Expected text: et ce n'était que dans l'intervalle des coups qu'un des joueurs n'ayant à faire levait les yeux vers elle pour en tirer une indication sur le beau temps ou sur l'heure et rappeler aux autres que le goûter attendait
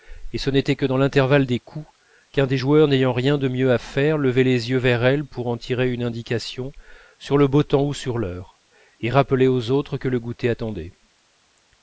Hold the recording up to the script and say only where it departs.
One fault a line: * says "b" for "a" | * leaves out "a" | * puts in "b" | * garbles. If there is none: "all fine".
* puts in "rien de mieux"